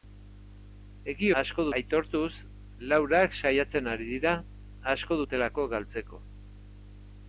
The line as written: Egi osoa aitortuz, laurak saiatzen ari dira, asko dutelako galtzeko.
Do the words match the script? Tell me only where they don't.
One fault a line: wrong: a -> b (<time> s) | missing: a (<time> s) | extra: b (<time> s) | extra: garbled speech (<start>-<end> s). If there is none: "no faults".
wrong: osoa -> asko (1.4 s)